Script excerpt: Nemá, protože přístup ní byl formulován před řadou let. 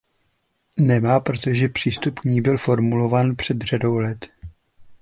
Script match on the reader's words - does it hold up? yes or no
yes